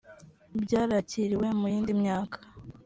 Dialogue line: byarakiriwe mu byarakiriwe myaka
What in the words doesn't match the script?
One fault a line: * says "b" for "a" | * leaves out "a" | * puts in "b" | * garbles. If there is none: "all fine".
* says "yindi" for "byarakiriwe"